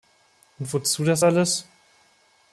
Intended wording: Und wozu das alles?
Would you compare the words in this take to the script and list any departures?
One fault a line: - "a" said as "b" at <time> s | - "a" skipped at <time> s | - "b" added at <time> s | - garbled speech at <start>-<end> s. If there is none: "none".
none